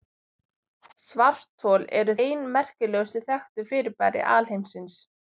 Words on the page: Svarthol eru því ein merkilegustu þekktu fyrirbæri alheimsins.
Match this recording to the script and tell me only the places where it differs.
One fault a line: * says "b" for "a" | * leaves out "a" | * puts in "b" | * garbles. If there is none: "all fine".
* leaves out "því"